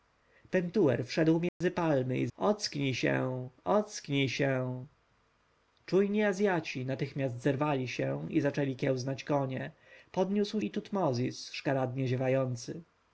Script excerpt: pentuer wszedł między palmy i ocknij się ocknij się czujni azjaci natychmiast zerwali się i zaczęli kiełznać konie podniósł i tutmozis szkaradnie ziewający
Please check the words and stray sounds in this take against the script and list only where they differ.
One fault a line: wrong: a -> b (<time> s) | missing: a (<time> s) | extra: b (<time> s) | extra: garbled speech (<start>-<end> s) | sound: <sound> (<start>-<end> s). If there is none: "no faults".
sound: dropout (1.5-1.6 s)